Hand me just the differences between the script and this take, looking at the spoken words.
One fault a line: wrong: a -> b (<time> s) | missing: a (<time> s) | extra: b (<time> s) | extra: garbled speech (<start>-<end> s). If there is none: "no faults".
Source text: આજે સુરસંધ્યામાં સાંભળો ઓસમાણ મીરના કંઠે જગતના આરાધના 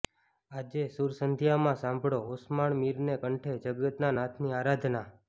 extra: નાથની (4.2 s)